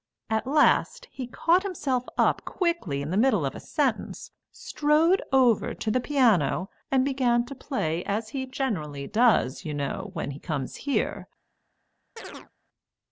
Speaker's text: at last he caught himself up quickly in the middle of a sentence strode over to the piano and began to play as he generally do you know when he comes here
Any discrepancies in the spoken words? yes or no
yes